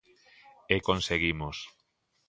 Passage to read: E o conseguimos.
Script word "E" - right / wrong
right